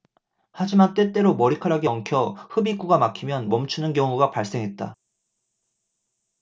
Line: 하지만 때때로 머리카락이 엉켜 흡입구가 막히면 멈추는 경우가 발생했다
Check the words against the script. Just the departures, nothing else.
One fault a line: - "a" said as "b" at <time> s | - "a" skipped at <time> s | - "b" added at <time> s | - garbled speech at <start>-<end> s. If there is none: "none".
none